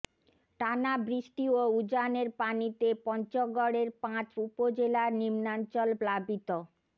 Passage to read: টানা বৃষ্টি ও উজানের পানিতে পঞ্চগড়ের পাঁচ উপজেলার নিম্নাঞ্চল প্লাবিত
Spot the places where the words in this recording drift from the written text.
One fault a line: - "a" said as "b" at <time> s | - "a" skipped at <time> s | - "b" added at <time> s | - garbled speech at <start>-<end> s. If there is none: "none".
none